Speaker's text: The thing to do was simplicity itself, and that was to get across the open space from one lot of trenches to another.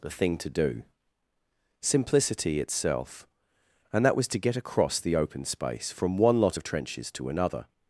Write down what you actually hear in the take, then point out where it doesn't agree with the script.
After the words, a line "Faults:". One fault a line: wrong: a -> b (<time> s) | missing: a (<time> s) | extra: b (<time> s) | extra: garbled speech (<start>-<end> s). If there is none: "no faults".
The thing to do simplicity itself, and that was to get across the open space from one lot of trenches to another.
Faults:
missing: was (0.8 s)